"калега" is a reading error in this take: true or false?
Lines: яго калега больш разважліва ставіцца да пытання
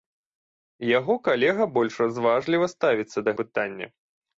false